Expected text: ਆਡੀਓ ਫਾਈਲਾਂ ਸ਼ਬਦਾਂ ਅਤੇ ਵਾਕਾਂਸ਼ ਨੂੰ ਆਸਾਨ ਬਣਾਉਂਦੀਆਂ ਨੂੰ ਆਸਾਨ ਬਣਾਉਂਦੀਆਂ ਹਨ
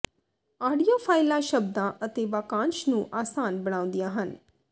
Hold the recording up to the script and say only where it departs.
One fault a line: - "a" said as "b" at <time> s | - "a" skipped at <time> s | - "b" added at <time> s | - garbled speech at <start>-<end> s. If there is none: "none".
- "ਨੂੰ ਆਸਾਨ ਬਣਾਉਂਦੀਆਂ" skipped at 4.1 s